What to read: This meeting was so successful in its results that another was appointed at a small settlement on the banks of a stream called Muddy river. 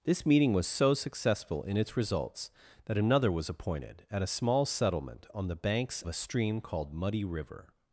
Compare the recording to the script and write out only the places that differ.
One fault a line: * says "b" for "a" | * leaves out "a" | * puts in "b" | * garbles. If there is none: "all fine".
* leaves out "of"